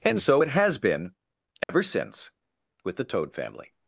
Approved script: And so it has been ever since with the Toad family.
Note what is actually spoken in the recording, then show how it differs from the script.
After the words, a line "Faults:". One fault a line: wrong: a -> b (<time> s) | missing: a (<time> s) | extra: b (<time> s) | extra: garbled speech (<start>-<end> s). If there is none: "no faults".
And so it has been ever since with the Toad family.
Faults:
no faults